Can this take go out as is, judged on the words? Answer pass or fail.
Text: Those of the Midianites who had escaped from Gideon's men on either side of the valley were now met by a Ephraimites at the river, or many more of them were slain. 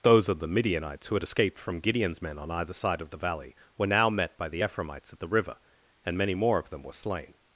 fail